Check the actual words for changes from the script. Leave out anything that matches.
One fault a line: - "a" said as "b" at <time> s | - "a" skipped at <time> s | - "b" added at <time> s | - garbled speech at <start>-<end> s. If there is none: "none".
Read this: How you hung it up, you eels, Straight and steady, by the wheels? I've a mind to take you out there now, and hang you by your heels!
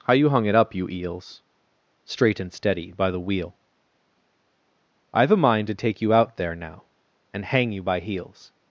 - "wheels" said as "wheel" at 3.2 s
- "your" skipped at 8.0 s